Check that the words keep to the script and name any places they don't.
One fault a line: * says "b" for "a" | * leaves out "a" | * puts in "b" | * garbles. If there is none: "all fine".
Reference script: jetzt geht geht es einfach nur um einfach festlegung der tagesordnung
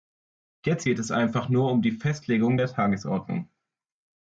* leaves out "geht"
* says "die" for "einfach"